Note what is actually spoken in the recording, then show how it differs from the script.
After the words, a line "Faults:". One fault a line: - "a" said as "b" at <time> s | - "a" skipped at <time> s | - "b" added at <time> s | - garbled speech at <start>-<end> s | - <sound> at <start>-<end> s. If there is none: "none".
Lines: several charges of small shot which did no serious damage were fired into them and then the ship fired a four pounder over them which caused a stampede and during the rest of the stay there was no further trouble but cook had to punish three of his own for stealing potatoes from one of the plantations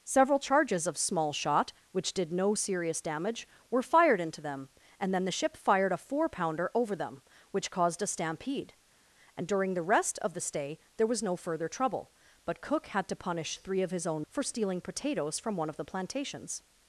several charges of small shot which did no serious damage were fired into them and then the ship fired a four pounder over them which caused a stampede and during the rest of the stay there was no further trouble but cook had to punish three of his own for stealing potatoes from one of the plantations
Faults:
none